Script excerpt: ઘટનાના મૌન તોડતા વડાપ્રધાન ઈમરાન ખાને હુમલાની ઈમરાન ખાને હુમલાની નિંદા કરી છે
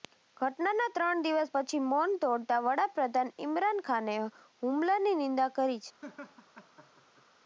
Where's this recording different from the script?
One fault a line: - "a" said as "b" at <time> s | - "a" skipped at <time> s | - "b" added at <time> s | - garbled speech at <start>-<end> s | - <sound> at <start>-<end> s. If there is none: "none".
- "ત્રણ દિવસ પછી" added at 0.9 s
- "ઈમરાન ખાને હુમલાની" skipped at 5.2 s
- laugh at 6.0-7.2 s